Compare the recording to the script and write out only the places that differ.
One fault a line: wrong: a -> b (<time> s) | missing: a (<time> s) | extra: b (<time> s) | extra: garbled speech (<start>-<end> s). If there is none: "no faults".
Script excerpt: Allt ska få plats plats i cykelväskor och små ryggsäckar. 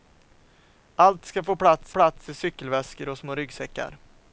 no faults